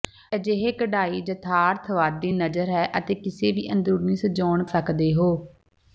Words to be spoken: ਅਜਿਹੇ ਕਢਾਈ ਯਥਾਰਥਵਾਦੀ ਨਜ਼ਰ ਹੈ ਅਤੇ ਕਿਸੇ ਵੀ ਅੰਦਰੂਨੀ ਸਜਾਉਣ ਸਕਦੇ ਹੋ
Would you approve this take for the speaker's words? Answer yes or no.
yes